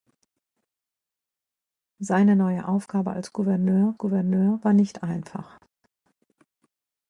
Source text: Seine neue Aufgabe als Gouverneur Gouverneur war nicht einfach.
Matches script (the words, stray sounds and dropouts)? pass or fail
pass